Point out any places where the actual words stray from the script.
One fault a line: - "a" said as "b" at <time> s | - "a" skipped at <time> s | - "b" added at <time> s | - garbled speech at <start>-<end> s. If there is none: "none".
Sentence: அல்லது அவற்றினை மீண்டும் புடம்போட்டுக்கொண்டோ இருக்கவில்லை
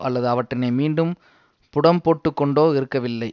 none